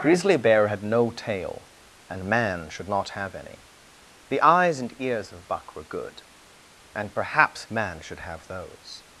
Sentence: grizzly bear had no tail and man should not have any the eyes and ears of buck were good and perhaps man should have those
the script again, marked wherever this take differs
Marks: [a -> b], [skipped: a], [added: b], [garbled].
grizzly bear had no tail and man should not have any the eyes and ears of buck were good and perhaps man should have those